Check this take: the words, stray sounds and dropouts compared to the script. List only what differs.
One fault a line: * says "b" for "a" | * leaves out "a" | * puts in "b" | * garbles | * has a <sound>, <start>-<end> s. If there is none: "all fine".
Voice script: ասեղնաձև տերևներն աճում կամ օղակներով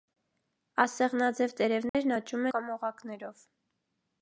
* has a dropout, 1.9-1.9 s